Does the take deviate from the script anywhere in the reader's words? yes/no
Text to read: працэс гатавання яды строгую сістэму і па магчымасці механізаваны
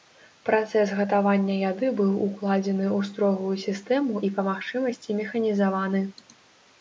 yes